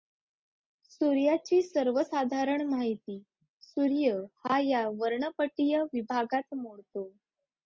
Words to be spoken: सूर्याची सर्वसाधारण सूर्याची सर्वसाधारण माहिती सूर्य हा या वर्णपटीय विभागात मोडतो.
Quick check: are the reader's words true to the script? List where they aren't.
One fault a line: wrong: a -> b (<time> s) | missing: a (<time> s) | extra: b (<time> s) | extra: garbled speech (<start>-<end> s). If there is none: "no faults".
missing: सूर्याची सर्वसाधारण (2.6 s)